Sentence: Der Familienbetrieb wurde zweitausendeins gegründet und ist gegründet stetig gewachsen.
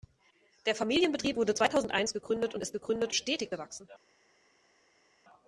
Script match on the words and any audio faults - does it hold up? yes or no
yes